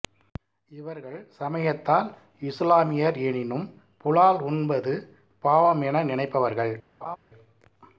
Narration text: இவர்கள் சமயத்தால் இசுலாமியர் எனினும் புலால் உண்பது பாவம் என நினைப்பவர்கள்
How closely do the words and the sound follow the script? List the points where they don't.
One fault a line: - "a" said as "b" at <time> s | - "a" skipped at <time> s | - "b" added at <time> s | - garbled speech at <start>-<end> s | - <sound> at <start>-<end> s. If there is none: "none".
- laugh at 7.0-7.2 s